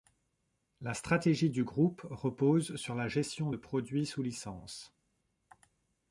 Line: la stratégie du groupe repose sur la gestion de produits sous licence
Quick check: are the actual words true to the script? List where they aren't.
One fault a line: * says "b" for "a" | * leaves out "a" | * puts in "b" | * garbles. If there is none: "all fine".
all fine